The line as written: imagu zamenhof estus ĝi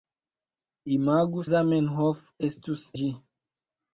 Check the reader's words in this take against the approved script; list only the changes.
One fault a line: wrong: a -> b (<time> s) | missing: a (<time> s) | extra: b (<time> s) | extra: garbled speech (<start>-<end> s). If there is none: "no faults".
no faults